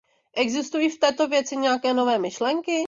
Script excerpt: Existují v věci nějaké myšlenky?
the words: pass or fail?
fail